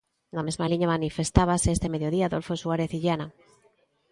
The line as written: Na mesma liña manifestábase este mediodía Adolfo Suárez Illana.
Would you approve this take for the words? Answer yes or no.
yes